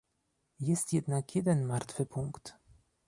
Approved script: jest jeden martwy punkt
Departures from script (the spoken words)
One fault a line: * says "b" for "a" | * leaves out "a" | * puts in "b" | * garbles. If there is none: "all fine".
* puts in "jednak"